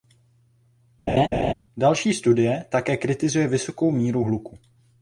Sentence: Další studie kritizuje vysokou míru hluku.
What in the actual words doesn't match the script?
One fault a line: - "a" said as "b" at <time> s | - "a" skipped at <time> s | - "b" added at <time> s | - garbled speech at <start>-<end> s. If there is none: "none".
- "také" added at 2.7 s